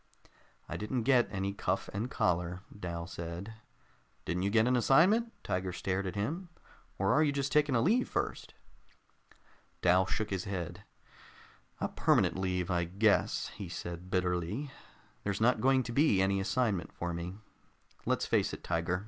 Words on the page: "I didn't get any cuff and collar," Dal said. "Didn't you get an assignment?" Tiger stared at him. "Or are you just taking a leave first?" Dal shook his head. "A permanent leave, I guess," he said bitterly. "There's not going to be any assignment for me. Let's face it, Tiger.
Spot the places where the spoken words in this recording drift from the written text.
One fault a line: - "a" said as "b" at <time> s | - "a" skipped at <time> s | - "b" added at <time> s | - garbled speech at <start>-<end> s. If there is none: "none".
none